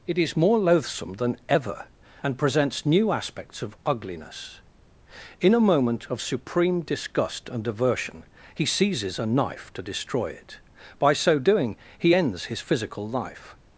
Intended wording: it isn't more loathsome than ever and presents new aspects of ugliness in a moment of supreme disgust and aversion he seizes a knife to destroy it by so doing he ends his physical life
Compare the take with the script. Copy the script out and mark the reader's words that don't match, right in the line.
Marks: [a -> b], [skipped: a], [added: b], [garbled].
it [isn't -> is] more loathsome than ever and presents new aspects of ugliness in a moment of supreme disgust and aversion he seizes a knife to destroy it by so doing he ends his physical life